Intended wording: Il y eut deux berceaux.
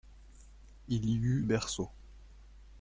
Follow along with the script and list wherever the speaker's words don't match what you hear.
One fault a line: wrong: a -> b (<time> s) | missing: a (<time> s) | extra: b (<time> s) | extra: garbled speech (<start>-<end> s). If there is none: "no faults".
missing: deux (1.4 s)